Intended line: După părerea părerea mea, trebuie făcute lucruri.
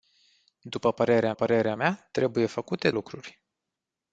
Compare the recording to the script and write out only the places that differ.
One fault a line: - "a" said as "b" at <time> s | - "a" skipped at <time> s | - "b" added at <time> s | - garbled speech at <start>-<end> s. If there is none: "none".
none